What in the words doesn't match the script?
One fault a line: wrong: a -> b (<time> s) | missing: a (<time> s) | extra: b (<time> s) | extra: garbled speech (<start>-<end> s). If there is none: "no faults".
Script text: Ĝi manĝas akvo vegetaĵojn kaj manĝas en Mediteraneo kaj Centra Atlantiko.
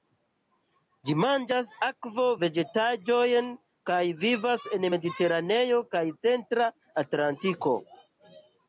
wrong: manĝas -> vivas (4.2 s)